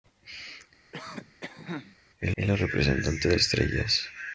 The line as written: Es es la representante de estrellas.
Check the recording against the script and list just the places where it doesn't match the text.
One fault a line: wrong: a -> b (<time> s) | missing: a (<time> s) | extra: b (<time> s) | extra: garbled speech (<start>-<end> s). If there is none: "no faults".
no faults